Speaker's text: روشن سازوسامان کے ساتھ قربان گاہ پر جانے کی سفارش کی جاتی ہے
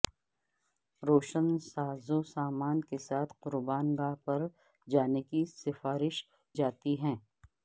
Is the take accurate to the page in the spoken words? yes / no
no